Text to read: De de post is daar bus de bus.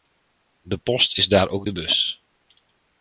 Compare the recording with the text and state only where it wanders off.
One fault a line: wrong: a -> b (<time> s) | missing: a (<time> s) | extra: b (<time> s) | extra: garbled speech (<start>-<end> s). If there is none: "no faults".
missing: de (0.8 s)
wrong: bus -> ook (1.5 s)